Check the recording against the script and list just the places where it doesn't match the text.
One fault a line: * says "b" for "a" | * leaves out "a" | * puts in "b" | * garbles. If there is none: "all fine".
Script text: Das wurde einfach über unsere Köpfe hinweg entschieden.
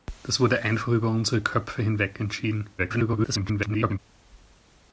* garbles